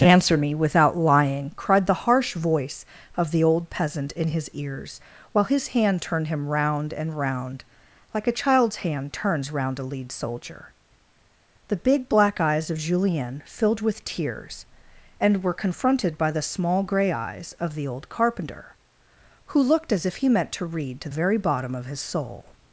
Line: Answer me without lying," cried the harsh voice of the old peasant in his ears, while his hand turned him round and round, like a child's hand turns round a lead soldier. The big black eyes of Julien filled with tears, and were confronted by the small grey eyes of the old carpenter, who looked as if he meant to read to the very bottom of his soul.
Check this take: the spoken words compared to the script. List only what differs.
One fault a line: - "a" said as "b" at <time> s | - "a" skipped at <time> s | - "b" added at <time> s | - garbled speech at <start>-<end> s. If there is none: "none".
- "the" skipped at 21.1 s